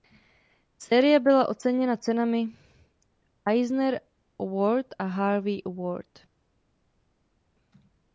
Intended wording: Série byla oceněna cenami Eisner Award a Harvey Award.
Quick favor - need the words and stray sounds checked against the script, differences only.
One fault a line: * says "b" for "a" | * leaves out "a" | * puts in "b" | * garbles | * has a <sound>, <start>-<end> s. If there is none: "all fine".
all fine